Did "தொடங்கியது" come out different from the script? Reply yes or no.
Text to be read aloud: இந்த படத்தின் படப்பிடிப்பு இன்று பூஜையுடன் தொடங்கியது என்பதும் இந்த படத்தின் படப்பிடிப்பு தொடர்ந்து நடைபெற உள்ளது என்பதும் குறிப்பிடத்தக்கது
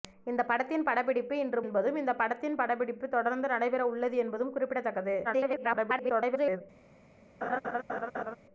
yes